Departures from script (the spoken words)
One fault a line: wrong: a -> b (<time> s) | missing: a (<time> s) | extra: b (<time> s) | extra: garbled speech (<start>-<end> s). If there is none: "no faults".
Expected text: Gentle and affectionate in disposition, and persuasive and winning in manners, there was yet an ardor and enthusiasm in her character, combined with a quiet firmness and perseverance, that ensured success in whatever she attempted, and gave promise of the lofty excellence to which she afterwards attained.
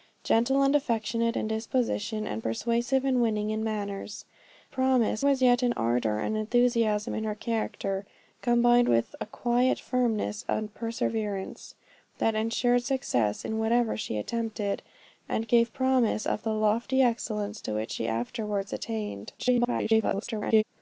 wrong: there -> promise (4.7 s)
extra: garbled speech (19.4-20.6 s)